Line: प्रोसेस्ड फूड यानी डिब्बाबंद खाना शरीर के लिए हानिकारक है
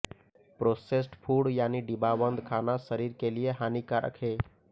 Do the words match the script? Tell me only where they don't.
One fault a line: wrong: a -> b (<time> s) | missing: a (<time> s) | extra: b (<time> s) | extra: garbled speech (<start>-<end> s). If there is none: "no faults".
no faults